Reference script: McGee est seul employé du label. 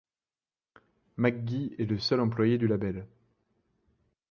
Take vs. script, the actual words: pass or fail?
fail